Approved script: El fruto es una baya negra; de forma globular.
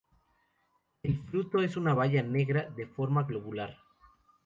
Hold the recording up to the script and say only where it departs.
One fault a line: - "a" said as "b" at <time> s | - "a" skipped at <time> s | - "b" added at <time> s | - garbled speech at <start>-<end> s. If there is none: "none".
none